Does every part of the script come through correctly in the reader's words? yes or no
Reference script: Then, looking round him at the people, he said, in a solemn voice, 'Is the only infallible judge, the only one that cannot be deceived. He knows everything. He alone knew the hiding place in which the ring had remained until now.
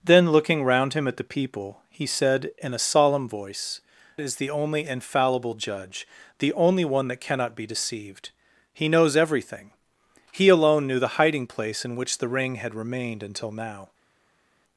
yes